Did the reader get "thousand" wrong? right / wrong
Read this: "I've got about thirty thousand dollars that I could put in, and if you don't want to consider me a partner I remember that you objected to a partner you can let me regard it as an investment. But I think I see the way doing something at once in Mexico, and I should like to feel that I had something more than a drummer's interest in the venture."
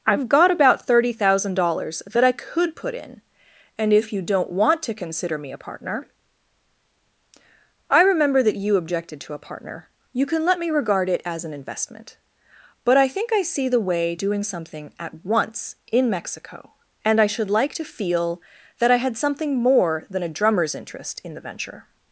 right